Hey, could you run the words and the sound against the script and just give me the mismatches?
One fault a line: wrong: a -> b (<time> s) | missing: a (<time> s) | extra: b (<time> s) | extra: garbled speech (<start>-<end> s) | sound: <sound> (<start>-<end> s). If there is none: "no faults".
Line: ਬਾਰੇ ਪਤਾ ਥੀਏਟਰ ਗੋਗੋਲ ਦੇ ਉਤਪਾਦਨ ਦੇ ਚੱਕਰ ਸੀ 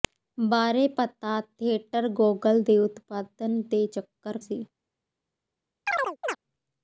sound: chirp (5.9-6.4 s)